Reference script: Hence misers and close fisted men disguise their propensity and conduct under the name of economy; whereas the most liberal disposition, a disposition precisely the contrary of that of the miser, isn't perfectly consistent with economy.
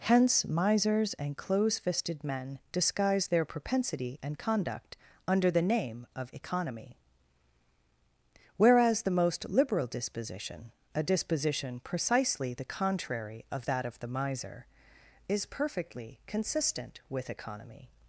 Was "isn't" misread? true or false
true